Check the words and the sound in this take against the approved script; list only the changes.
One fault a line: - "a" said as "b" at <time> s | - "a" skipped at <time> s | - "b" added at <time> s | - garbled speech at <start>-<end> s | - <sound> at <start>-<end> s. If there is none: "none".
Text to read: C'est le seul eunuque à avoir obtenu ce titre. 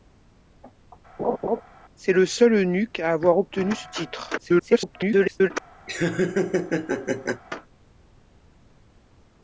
- laugh at 1.2-1.6 s
- garbled speech at 4.4-5.5 s
- laugh at 5.9-7.4 s